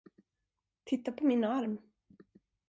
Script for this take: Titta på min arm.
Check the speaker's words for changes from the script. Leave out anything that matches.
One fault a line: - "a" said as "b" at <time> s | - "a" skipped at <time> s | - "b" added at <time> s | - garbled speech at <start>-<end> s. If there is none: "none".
none